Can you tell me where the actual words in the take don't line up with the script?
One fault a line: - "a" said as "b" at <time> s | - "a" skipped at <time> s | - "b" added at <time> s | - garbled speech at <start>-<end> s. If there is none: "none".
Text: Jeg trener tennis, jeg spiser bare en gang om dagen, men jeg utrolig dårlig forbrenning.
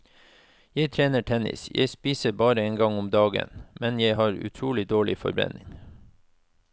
- "har" added at 4.1 s